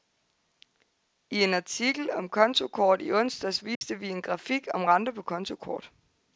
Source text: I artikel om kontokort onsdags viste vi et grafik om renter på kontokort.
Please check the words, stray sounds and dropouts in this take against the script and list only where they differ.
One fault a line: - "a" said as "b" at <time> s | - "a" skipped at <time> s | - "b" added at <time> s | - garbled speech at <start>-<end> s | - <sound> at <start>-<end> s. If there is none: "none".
- "en" added at 1.4 s
- "i" added at 3.0 s
- dropout at 3.7-3.8 s
- "et" said as "en" at 4.1 s